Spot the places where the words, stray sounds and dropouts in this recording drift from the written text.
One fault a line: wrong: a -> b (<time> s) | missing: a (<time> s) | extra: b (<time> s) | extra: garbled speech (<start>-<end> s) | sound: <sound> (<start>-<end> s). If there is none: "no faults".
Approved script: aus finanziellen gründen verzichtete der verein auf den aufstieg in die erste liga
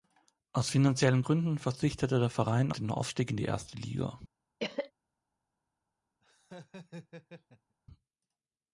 missing: auf (2.7 s)
sound: cough (4.6-4.9 s)
sound: laugh (6.2-7.8 s)